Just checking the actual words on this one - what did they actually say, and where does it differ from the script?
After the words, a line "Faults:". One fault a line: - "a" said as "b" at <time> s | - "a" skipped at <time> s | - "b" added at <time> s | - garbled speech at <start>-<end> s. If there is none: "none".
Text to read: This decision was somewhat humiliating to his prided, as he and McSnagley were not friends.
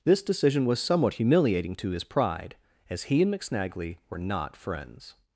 This decision was somewhat humiliating to his pride, as he and McSnagley were not friends.
Faults:
- "prided" said as "pride" at 2.0 s